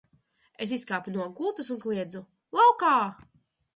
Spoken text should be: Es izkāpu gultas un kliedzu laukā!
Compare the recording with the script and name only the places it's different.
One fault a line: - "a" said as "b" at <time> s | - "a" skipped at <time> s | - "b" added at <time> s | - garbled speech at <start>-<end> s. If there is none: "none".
- "no" added at 1.2 s